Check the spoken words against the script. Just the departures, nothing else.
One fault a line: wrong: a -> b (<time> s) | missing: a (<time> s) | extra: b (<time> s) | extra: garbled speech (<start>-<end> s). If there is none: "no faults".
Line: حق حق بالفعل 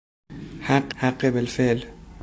no faults